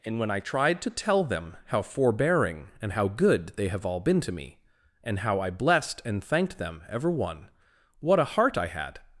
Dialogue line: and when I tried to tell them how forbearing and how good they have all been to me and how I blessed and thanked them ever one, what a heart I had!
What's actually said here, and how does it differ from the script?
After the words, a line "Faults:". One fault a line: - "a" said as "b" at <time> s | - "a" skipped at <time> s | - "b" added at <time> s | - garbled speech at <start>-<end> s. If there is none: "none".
and when I tried to tell them how forbearing and how good they have all been to me and how I blessed and thanked them ever one, what a heart I had!
Faults:
none